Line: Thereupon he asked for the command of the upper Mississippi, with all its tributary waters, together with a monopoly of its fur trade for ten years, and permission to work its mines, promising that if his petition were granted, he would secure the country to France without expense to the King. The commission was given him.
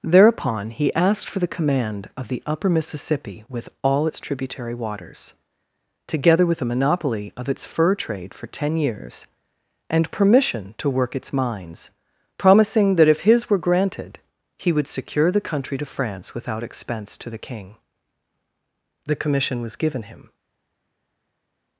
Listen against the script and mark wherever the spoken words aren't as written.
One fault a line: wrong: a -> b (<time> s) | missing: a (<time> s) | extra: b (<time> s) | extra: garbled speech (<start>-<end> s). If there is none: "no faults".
missing: petition (13.5 s)